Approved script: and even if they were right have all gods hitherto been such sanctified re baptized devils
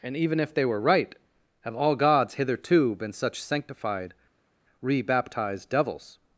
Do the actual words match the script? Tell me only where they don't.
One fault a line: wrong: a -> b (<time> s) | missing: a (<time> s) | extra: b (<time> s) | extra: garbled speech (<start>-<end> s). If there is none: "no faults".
no faults